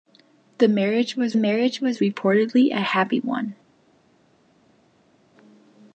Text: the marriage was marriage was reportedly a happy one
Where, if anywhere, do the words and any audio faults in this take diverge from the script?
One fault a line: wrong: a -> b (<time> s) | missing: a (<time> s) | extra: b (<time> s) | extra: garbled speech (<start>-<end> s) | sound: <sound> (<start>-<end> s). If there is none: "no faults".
no faults